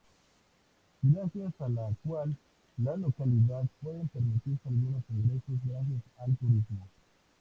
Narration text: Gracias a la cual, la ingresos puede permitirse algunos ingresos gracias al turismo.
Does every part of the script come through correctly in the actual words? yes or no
no